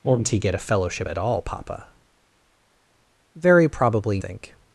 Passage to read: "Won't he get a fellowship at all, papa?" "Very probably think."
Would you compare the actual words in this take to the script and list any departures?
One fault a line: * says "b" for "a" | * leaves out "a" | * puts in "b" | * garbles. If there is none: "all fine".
all fine